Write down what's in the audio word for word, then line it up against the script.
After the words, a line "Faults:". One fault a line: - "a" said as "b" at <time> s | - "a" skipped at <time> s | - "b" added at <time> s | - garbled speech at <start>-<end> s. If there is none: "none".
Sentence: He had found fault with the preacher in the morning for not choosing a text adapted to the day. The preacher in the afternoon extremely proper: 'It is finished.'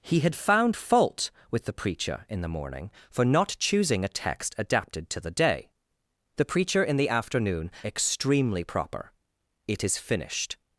He had found fault with the preacher in the morning for not choosing a text adapted to the day. The preacher in the afternoon extremely proper: 'It is finished.'
Faults:
none